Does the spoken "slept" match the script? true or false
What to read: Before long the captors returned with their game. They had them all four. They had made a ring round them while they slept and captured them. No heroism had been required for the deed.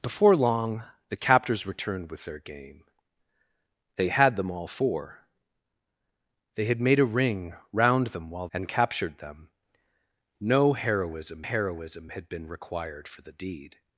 false